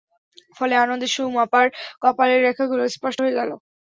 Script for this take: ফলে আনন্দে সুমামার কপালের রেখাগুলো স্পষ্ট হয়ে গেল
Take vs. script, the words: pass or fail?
pass